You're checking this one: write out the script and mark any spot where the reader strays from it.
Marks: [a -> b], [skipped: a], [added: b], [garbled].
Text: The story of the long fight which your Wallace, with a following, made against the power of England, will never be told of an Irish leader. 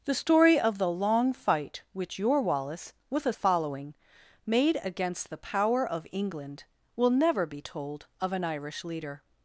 The story of the long fight which your Wallace, with a following, made against the power of England, will never be told of an Irish leader.